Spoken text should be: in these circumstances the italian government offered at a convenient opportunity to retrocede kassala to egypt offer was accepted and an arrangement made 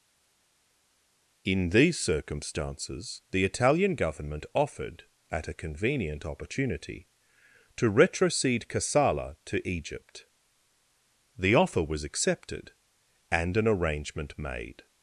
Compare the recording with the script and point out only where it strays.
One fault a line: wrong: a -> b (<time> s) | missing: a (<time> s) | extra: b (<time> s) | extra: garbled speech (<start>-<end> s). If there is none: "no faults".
extra: the (11.4 s)